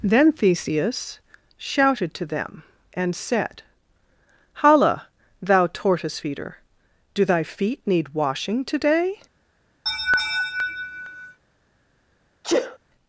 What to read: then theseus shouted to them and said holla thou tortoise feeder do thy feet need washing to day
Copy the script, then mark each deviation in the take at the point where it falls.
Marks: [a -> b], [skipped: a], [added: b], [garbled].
then theseus shouted to them and said holla thou tortoise feeder do thy feet need washing to day